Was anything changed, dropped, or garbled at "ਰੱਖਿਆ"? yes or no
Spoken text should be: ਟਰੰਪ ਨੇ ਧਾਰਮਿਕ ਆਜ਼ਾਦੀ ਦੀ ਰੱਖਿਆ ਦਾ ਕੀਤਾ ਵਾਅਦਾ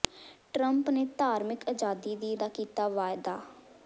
yes